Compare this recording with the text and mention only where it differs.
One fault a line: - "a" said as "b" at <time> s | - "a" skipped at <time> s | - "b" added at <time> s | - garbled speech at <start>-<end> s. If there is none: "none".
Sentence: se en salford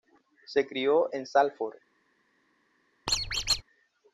- "crio" added at 0.7 s